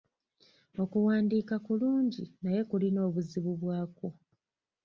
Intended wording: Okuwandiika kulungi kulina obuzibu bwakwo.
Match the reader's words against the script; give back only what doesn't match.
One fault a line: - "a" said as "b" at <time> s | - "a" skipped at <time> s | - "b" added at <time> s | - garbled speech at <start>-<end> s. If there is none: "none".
- "naye" added at 2.4 s